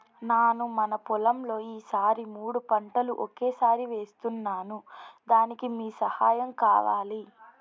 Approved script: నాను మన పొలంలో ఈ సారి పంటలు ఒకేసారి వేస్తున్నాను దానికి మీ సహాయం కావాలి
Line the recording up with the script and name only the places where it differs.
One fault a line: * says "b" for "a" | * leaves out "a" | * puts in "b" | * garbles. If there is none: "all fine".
* puts in "మూడు"